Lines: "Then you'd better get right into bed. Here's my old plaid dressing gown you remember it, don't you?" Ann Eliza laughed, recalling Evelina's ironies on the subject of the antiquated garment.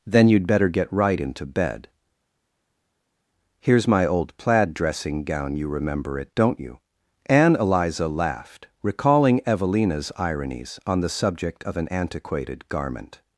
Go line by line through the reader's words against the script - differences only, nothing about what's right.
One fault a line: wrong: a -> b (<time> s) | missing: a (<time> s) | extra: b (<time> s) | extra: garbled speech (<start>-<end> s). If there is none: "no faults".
wrong: the -> an (11.8 s)